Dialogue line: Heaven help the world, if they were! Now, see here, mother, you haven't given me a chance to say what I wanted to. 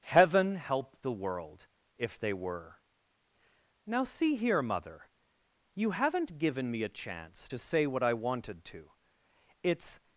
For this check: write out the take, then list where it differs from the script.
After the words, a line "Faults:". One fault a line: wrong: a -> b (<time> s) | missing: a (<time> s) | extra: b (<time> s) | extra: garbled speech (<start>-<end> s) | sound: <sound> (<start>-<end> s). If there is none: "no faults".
Heaven help the world, if they were! Now, see here, mother, you haven't given me a chance to say what I wanted to. It's
Faults:
extra: It's (9.6 s)